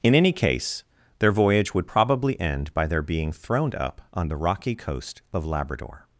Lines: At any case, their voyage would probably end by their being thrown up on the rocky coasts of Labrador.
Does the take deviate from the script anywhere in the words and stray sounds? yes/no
yes